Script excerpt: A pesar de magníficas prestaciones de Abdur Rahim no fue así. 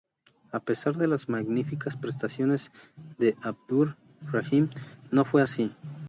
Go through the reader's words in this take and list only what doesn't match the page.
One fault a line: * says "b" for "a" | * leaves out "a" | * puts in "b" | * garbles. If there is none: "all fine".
* puts in "las"